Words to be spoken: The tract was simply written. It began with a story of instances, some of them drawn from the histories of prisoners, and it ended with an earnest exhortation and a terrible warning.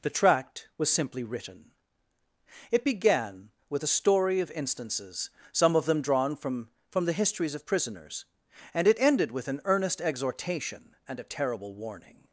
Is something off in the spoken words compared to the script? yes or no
yes